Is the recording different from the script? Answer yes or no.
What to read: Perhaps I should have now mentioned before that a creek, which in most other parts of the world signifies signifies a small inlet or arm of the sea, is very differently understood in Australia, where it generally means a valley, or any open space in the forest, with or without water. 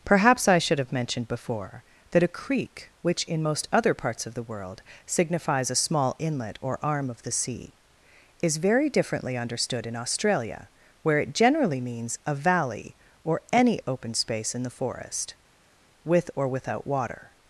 yes